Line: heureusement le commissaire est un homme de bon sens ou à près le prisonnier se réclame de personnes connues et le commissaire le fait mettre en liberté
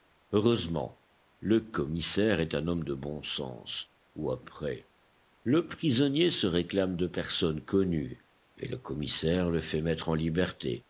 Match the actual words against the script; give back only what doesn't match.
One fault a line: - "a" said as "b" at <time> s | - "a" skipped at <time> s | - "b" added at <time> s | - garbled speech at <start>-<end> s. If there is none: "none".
none